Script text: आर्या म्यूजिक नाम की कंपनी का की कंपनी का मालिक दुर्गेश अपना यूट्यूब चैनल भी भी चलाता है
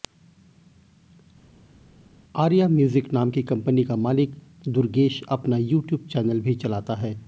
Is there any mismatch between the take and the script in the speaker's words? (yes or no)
yes